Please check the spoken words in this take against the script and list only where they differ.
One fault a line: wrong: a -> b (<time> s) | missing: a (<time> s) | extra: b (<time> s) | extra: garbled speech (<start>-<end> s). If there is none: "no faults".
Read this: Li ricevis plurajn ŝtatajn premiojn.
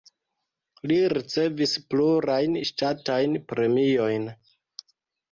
no faults